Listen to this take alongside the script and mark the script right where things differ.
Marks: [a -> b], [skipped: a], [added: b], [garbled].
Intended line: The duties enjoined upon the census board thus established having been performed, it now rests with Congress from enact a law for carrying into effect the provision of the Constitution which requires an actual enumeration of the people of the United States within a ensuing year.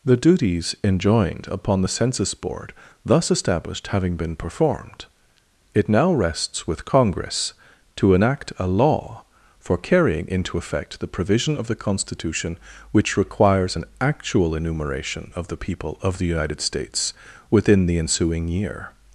The duties enjoined upon the census board thus established having been performed, it now rests with Congress [from -> to] enact a law for carrying into effect the provision of the Constitution which requires an actual enumeration of the people of the United States within [a -> the] ensuing year.